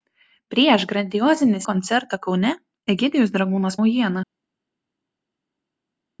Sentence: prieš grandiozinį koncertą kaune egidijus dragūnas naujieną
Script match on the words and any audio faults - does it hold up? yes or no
yes